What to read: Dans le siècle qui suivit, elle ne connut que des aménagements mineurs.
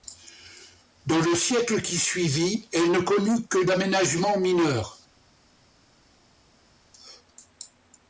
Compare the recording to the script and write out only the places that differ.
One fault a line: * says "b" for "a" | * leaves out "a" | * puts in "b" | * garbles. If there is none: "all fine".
* leaves out "des"